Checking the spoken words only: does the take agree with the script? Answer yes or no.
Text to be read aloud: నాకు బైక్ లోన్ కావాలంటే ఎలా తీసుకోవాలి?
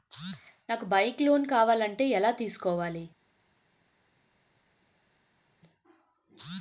yes